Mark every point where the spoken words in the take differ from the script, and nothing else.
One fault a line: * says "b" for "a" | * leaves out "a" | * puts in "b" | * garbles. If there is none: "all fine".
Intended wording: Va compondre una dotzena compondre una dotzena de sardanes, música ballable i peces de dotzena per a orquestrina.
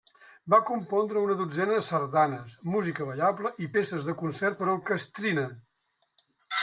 * leaves out "compondre una dotzena"
* says "concert" for "dotzena"